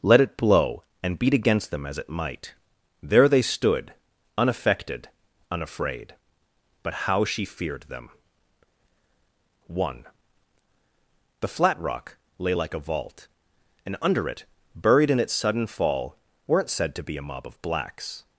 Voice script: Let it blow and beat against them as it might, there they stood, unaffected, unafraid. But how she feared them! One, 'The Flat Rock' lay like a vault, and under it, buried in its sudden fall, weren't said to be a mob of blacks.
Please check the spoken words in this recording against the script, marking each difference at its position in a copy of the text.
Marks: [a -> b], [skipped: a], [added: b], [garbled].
Let it blow and beat against them as it might, there they stood, unaffected, unafraid. But how she feared them! One, 'The Flat Rock' lay like a vault, and under it, buried in its sudden fall, weren't said to be a mob of blacks.